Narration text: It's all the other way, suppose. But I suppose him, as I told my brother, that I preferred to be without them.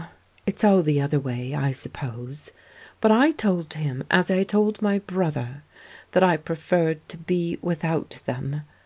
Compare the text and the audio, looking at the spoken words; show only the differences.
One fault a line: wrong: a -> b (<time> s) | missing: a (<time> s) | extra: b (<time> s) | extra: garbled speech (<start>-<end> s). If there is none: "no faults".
extra: I (1.5 s)
wrong: suppose -> told (3.3 s)